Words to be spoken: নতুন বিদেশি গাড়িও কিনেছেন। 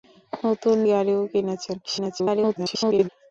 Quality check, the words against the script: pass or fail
fail